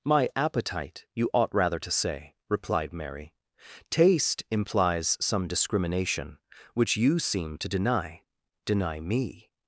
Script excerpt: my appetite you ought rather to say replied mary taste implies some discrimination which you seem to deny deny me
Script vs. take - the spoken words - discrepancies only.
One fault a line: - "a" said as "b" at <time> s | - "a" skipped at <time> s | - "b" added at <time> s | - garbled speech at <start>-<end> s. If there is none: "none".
none